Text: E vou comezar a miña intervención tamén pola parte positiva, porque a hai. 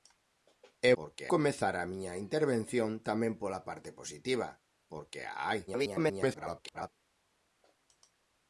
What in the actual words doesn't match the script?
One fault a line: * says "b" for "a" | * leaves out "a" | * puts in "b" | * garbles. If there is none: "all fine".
* says "porque" for "vou"
* garbles